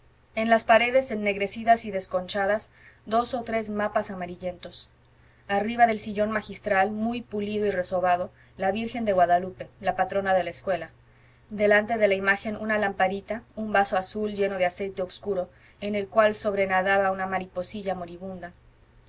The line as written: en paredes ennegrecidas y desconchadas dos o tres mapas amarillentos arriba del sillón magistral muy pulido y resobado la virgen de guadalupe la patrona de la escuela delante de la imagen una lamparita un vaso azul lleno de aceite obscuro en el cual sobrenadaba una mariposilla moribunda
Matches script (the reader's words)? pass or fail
fail